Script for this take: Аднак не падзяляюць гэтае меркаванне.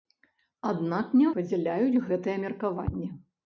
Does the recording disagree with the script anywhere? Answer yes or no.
no